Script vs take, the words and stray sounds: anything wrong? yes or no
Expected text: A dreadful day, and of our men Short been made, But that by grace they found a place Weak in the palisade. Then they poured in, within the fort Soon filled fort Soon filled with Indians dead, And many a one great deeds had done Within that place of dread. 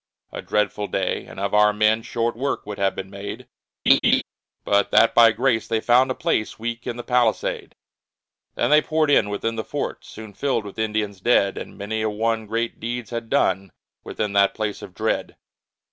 yes